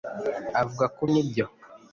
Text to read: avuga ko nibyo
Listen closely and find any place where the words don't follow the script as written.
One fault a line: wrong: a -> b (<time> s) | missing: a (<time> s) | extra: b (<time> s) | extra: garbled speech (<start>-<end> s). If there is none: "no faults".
no faults